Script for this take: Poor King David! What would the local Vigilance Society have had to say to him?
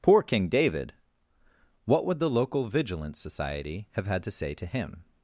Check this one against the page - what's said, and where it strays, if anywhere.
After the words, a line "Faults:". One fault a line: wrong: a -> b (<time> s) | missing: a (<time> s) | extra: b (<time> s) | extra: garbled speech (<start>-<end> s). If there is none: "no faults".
Poor King David! What would the local Vigilance Society have had to say to him?
Faults:
no faults